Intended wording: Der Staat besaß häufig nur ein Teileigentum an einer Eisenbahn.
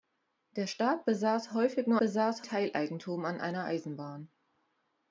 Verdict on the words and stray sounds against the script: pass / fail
fail